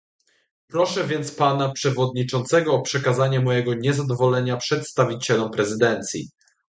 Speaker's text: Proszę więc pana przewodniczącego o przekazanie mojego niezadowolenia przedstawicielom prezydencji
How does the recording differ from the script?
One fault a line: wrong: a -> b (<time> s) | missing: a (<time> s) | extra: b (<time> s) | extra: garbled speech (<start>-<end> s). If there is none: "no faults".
no faults